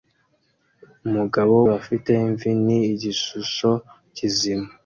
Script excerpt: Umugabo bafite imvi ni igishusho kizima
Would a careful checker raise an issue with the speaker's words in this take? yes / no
no